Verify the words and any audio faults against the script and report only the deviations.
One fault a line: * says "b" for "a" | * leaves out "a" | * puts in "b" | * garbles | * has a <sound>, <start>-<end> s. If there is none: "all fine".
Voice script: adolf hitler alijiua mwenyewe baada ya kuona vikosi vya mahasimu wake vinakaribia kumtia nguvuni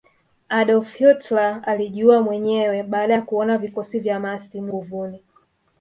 * leaves out "wake vinakaribia kumtia"